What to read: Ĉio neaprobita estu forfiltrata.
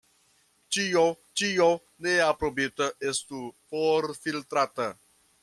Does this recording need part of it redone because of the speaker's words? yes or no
yes